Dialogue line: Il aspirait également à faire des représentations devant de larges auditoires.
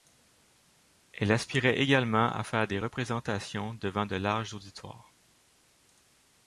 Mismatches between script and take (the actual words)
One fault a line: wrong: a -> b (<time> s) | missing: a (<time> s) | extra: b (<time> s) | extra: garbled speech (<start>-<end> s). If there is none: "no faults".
wrong: Il -> Elle (1.1 s)